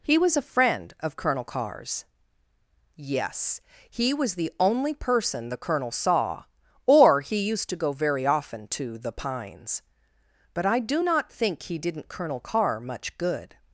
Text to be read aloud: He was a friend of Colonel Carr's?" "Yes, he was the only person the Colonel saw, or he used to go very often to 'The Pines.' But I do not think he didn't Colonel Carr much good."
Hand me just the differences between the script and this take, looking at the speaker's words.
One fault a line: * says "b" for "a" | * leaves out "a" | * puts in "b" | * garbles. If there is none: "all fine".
all fine